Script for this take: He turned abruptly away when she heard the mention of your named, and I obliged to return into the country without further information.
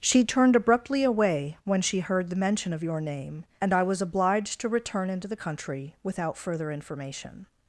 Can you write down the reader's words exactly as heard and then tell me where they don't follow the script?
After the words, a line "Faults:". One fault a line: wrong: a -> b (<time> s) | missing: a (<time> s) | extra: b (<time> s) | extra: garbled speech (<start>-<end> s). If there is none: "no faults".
She turned abruptly away when she heard the mention of your name, and I was obliged to return into the country without further information.
Faults:
wrong: He -> She (0.0 s)
wrong: named -> name (3.0 s)
extra: was (3.8 s)